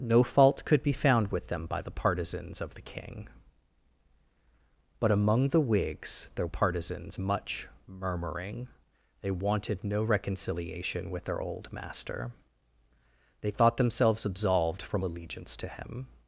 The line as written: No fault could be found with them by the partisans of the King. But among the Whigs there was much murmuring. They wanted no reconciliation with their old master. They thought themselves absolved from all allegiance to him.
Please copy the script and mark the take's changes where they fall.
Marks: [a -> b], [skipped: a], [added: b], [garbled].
No fault could be found with them by the partisans of the King. But among the Whigs there [was -> partisans] much murmuring. They wanted no reconciliation with their old master. They thought themselves absolved from [skipped: all] allegiance to him.